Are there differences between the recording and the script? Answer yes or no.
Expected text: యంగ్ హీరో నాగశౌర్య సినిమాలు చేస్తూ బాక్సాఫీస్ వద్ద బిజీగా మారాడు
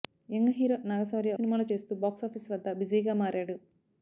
no